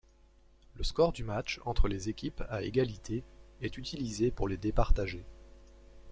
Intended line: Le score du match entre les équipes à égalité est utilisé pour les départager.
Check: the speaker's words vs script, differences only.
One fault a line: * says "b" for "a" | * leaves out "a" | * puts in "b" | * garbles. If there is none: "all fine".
all fine